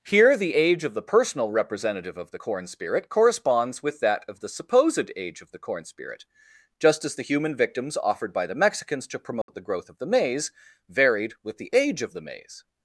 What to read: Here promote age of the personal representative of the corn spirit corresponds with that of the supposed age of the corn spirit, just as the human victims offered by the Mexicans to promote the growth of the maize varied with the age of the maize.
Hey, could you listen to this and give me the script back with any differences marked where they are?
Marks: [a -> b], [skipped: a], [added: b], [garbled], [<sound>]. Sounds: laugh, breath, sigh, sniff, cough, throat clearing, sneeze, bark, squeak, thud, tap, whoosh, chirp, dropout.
Here [promote -> the] age of the personal representative of the corn spirit corresponds with that of the supposed age of the corn spirit, just as the human victims offered by the Mexicans to promote [dropout] the growth of the maize varied with the age of the maize.